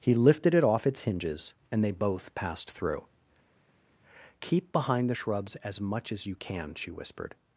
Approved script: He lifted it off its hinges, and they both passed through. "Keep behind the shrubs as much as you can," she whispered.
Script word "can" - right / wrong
right